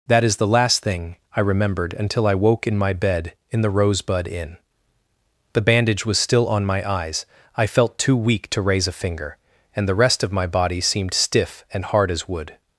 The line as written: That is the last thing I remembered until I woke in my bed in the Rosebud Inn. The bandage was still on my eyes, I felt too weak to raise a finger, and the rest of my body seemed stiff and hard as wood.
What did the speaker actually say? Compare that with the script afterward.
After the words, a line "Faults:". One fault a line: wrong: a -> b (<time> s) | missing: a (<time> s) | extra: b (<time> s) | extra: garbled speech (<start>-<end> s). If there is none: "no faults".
That is the last thing I remembered until I woke in my bed in the Rosebud Inn. The bandage was still on my eyes, I felt too weak to raise a finger, and the rest of my body seemed stiff and hard as wood.
Faults:
no faults